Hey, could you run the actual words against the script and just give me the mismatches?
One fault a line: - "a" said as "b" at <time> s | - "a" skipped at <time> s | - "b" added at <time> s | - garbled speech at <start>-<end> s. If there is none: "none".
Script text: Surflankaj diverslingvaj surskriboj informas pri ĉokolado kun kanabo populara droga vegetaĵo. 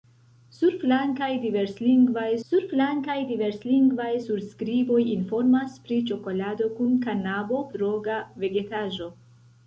- "surflankaj diverslingvaj" added at 2.5 s
- "populara" skipped at 7.6 s